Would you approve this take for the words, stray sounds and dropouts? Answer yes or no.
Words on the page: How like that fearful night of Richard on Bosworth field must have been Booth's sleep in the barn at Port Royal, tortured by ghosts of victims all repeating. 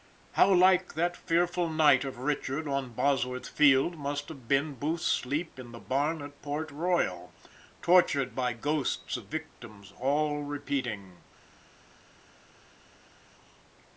yes